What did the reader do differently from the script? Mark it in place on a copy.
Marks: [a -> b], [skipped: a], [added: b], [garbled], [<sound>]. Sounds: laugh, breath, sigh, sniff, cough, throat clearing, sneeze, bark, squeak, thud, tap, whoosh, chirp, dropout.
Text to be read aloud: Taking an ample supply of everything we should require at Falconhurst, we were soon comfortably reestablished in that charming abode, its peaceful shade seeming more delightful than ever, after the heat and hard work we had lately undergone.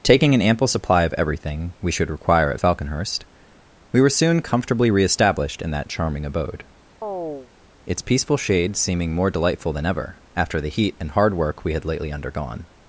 Taking an ample supply of everything we should require at Falconhurst, we were soon comfortably reestablished in that charming abode, [chirp] its peaceful shade seeming more delightful than ever, after the heat and hard work we had lately undergone.